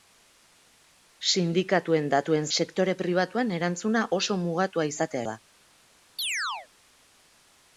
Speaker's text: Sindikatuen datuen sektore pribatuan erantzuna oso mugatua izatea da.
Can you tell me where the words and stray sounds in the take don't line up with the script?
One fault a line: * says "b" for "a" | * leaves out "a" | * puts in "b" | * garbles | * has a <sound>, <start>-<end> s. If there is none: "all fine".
* has a chirp, 6.2-6.7 s